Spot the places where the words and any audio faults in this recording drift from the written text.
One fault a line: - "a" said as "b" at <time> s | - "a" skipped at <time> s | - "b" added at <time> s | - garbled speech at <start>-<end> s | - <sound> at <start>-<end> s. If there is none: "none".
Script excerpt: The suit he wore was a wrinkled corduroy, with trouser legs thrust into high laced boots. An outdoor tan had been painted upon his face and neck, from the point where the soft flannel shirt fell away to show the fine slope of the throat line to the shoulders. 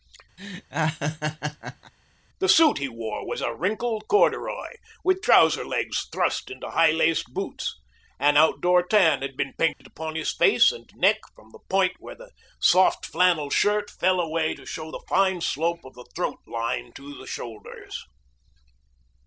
- laugh at 0.4-1.9 s
- dropout at 9.7-9.8 s